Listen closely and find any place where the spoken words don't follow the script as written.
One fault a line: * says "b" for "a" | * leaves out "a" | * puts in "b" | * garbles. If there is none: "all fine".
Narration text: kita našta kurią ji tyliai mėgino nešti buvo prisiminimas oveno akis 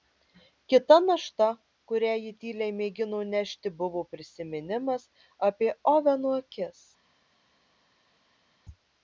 * puts in "apie"